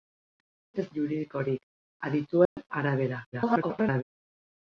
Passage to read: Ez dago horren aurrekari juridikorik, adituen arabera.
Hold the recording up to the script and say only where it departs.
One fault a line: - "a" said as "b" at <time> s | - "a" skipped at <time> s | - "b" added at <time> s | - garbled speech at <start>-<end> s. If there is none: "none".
- "dago horren aurrekari" skipped at 0.8 s
- garbled speech at 3.3-4.0 s